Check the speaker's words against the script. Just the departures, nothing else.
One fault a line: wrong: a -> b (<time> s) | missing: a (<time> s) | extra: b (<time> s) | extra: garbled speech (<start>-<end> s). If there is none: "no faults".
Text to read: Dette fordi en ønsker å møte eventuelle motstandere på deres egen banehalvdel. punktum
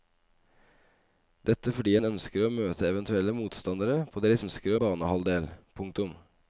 wrong: egen -> ønsker (4.4 s)